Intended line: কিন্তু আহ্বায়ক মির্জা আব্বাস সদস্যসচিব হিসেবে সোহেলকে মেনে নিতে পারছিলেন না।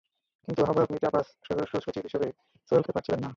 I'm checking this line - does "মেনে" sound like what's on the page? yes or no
no